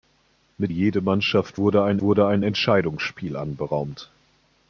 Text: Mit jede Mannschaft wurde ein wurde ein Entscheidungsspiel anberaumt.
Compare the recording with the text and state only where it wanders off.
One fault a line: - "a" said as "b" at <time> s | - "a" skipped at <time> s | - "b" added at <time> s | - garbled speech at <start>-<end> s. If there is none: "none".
none